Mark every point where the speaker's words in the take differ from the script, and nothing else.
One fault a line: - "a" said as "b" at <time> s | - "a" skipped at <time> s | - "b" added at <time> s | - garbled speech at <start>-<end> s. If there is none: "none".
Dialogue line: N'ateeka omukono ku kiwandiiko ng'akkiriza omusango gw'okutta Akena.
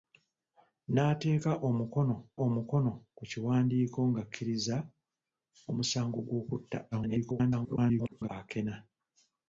- "omukono" added at 2.4 s
- garbled speech at 6.9-8.3 s